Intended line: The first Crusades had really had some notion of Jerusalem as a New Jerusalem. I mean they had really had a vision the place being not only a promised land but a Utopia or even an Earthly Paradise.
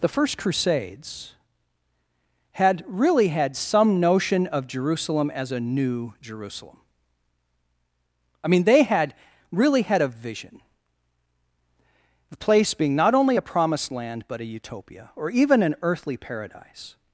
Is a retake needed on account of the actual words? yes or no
no